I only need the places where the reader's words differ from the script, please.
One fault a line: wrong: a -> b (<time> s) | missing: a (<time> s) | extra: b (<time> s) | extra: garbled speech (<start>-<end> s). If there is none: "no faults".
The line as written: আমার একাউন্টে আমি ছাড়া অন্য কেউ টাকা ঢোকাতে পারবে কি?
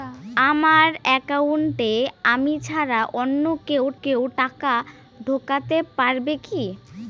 extra: কেউ (4.0 s)